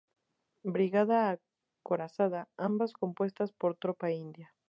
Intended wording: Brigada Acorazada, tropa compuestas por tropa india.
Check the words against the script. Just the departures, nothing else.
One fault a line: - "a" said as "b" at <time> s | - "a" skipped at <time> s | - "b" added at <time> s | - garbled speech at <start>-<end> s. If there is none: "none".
- "tropa" said as "ambas" at 2.6 s